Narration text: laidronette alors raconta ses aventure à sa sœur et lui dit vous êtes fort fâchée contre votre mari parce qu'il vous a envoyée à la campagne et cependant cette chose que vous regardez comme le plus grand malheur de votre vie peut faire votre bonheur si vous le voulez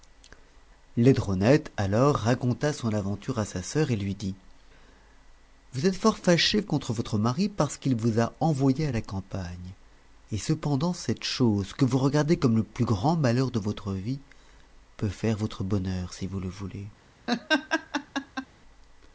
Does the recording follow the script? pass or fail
fail